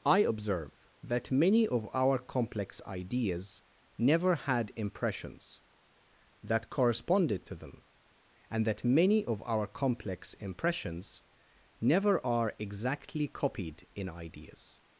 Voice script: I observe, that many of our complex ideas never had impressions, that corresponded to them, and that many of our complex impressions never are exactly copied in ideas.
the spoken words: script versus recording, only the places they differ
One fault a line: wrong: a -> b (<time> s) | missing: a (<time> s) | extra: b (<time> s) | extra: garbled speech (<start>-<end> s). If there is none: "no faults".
no faults